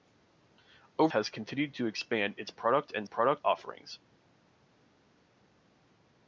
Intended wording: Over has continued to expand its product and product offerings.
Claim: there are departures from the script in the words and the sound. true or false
false